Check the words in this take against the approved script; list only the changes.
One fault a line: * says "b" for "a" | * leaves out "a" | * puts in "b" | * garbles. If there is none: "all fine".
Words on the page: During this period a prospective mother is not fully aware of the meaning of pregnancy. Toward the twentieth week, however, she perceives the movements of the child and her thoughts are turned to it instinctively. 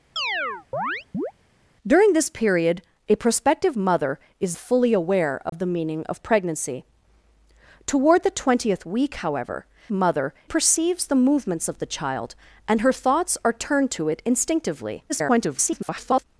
* leaves out "not"
* says "mother" for "she"
* garbles